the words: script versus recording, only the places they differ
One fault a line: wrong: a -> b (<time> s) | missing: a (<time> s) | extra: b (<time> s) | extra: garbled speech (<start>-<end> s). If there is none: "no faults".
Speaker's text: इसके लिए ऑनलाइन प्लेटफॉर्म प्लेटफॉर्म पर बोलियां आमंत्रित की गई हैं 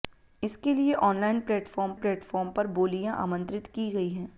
no faults